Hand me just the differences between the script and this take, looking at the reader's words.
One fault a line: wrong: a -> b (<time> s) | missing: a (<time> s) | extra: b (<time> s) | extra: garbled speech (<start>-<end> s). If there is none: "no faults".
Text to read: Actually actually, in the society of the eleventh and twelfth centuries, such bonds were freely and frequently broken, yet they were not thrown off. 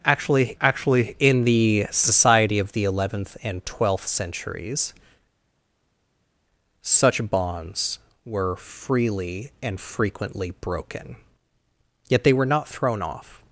no faults